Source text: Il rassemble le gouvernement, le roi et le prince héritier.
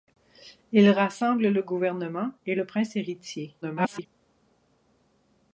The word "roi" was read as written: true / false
false